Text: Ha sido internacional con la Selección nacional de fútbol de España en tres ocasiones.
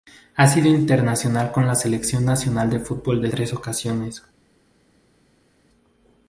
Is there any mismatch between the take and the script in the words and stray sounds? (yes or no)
yes